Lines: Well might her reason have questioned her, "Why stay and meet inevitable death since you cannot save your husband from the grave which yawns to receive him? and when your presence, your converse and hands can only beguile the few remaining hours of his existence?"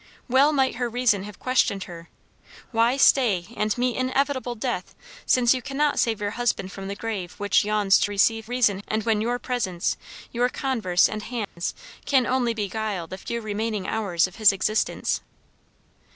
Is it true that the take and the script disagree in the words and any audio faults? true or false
true